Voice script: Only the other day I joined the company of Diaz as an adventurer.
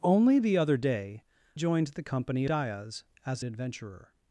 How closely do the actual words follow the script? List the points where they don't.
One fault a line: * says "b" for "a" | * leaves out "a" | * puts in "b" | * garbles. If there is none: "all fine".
* leaves out "I"
* leaves out "of"
* leaves out "an"